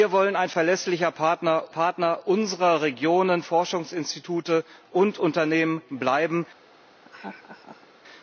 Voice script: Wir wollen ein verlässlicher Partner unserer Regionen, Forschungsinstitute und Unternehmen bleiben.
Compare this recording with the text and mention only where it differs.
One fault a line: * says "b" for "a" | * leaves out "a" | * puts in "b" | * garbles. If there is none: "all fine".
* puts in "Partner"